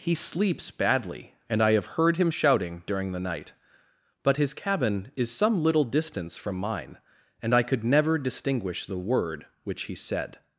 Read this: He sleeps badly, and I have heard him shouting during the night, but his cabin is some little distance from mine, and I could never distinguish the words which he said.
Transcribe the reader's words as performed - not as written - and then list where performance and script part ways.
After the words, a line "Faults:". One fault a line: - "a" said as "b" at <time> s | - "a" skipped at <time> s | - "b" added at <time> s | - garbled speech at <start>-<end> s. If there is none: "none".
He sleeps badly, and I have heard him shouting during the night, but his cabin is some little distance from mine, and I could never distinguish the word which he said.
Faults:
- "words" said as "word" at 9.0 s